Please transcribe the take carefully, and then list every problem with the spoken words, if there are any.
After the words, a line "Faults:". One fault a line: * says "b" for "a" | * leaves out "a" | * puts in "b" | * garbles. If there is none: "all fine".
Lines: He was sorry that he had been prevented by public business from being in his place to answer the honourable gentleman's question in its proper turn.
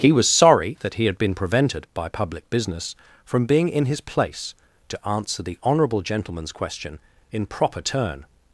He was sorry that he had been prevented by public business from being in his place to answer the honourable gentleman's question in proper turn.
Faults:
* leaves out "its"